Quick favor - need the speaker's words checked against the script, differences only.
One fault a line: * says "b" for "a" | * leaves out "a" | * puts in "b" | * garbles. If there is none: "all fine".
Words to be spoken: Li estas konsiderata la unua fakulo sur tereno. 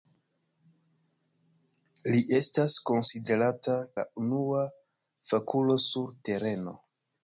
all fine